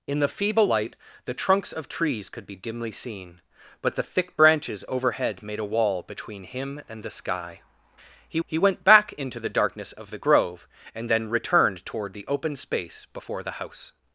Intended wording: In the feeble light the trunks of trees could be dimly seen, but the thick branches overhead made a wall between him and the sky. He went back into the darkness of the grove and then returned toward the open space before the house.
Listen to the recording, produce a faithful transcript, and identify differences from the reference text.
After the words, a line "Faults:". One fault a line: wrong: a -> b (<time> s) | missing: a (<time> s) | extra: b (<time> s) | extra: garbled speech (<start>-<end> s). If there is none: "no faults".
In the feeble light the trunks of trees could be dimly seen, but the thick branches overhead made a wall between him and the sky. He he went back into the darkness of the grove and then returned toward the open space before the house.
Faults:
extra: he (8.4 s)